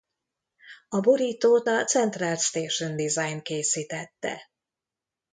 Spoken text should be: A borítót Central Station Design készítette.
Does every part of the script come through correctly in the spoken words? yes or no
no